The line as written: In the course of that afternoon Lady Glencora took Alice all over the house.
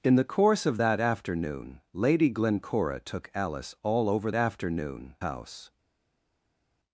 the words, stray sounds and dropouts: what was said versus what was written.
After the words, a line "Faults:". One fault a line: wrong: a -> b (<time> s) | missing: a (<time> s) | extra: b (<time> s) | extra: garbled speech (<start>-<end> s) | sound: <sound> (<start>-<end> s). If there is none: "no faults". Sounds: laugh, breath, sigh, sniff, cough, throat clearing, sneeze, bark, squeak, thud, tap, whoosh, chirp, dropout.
In the course of that afternoon Lady Glencora took Alice all over afternoon house.
Faults:
wrong: the -> afternoon (4.3 s)